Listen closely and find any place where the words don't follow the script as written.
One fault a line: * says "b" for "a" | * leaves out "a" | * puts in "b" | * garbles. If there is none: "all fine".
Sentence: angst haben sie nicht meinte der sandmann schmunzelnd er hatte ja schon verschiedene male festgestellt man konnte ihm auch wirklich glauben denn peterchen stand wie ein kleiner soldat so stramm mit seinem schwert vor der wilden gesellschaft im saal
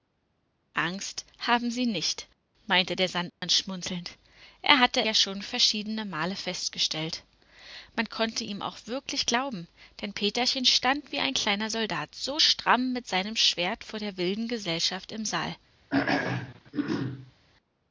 all fine